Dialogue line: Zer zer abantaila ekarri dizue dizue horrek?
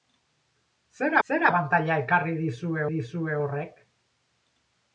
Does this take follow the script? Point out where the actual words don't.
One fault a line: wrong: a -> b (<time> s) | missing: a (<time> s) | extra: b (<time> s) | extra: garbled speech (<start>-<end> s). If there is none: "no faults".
no faults